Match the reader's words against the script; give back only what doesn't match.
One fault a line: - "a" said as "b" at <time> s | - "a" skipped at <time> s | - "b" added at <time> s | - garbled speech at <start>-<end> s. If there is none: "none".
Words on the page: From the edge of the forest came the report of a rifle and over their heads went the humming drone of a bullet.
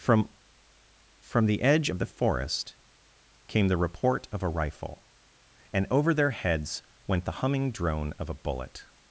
- "from" added at 1.2 s